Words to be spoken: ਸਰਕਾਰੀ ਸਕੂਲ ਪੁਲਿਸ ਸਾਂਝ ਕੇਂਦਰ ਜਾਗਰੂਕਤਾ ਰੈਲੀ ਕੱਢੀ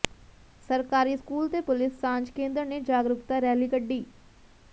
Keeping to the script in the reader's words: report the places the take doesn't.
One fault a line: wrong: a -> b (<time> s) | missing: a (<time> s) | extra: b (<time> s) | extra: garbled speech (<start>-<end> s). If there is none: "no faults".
extra: ਤੇ (1.5 s)
extra: ਨੇ (2.6 s)